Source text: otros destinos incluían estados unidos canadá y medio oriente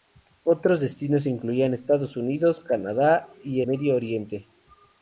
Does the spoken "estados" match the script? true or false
true